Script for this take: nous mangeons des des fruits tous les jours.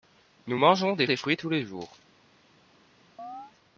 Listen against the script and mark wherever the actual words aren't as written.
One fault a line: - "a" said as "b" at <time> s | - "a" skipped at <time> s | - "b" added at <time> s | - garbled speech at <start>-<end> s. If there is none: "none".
none